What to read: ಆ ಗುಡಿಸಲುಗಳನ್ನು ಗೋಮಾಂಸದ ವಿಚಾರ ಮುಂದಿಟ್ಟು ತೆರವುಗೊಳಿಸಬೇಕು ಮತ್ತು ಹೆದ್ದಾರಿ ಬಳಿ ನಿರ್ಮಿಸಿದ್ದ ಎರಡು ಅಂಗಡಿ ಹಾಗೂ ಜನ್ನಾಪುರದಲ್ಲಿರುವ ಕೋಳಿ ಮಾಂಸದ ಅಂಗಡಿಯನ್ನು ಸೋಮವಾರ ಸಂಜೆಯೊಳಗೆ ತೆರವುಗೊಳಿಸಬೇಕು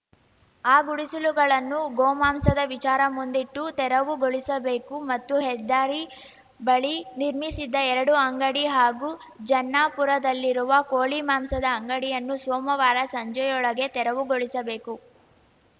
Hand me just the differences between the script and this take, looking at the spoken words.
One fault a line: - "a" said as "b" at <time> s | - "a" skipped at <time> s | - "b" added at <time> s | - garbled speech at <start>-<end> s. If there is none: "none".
none